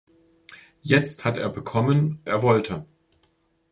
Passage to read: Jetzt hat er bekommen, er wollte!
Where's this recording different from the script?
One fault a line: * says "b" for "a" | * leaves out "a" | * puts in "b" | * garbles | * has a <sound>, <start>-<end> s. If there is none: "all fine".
all fine